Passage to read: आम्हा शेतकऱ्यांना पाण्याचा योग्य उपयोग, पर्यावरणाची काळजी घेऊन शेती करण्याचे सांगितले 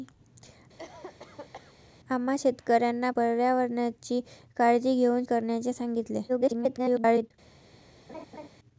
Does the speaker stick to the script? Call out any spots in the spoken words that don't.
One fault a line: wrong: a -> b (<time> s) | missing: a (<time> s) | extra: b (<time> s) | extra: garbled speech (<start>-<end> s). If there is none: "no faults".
missing: पाण्याचा योग्य उपयोग (3.1 s)
missing: शेती (5.2 s)
extra: garbled speech (6.3-7.3 s)